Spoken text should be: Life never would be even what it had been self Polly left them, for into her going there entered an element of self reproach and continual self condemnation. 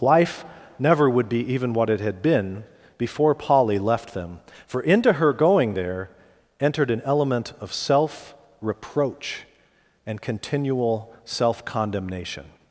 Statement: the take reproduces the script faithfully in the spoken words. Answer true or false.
false